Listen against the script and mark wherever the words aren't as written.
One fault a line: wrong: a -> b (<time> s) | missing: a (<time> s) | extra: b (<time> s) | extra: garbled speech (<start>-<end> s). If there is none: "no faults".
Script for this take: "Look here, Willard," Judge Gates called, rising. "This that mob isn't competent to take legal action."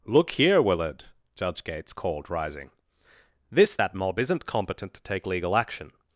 no faults